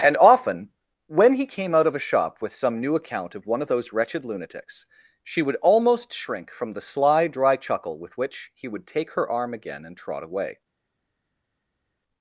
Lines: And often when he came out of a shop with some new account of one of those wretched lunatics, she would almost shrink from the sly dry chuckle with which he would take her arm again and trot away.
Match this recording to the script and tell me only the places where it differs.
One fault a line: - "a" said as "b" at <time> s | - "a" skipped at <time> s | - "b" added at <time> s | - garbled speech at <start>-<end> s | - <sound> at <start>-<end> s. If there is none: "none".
none